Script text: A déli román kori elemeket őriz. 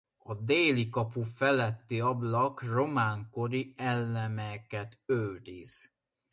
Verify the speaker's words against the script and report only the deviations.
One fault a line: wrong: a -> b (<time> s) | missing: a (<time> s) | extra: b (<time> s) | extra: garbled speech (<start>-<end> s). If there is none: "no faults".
extra: kapu feletti ablak (0.9 s)